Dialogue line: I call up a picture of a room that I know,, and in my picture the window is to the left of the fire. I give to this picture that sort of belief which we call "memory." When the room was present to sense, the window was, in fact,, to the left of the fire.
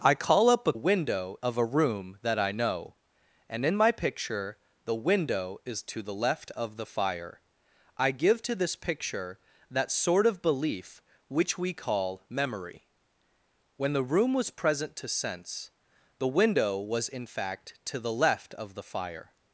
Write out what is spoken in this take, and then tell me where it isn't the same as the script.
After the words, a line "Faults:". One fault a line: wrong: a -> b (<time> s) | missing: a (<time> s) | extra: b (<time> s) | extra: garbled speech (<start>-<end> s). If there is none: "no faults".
I call up a window of a room that I know,, and in my picture the window is to the left of the fire. I give to this picture that sort of belief which we call "memory." When the room was present to sense, the window was, in fact,, to the left of the fire.
Faults:
wrong: picture -> window (0.7 s)